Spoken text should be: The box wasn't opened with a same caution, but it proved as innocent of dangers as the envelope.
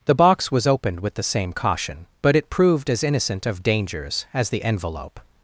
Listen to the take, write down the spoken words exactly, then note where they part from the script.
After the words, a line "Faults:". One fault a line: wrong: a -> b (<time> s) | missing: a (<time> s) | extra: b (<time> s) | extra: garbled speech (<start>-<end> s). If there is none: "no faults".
The box was opened with the same caution, but it proved as innocent of dangers as the envelope.
Faults:
wrong: wasn't -> was (0.5 s)
wrong: a -> the (1.1 s)